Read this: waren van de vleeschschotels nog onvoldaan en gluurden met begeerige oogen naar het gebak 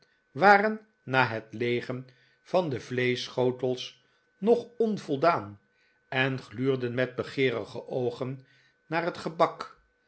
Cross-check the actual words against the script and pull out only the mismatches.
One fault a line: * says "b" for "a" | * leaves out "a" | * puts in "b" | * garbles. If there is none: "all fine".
* puts in "na het leegen"